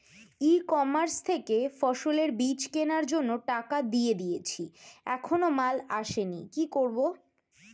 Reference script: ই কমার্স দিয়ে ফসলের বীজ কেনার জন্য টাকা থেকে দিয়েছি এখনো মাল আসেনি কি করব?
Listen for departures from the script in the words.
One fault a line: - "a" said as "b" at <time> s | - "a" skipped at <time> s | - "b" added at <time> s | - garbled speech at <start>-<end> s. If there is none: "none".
- "দিয়ে" said as "থেকে" at 1.3 s
- "থেকে" said as "দিয়ে" at 3.9 s